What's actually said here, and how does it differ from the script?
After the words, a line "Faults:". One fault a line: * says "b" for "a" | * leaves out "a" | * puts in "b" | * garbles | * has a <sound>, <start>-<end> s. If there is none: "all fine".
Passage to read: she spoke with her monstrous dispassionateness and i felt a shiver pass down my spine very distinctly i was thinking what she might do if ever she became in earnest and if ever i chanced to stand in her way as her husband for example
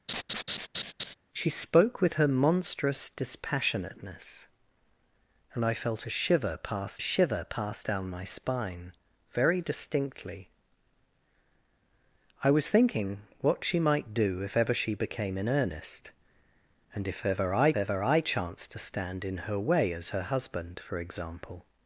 she spoke with her monstrous dispassionateness and i felt a shiver pass shiver pass down my spine very distinctly i was thinking what she might do if ever she became in earnest and if ever i ever i chanced to stand in her way as her husband for example
Faults:
* has a laugh, 0.1-1.1 s
* puts in "shiver pass"
* puts in "ever i"